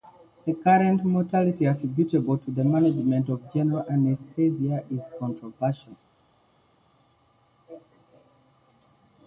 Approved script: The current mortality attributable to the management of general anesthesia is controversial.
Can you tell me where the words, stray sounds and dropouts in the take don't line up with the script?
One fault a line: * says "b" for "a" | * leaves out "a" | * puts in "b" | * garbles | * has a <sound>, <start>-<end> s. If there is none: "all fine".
all fine